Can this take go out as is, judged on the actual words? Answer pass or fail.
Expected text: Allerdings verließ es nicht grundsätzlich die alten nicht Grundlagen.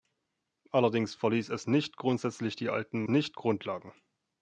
pass